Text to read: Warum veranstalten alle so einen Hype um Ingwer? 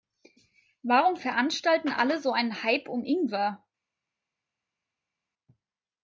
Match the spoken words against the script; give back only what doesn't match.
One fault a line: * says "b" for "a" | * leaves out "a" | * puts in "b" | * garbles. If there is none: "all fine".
all fine